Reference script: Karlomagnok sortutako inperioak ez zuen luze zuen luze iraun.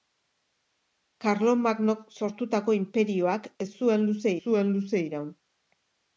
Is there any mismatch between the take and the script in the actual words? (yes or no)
no